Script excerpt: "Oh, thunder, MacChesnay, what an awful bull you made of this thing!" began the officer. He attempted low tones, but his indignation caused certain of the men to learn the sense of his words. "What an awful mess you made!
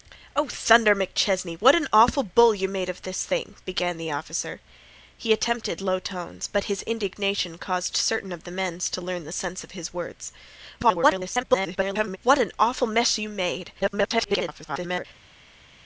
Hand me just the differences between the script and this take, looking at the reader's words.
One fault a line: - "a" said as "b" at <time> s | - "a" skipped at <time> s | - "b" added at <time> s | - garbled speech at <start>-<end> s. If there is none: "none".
- garbled speech at 10.8-12.2 s
- garbled speech at 13.8-15.1 s